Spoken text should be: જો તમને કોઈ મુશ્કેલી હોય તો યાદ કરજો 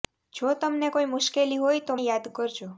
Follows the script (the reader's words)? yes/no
yes